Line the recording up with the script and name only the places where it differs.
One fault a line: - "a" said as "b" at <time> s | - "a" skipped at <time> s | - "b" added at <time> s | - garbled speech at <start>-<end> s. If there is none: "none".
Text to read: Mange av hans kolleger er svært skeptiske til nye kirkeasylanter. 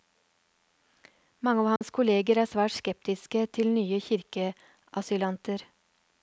none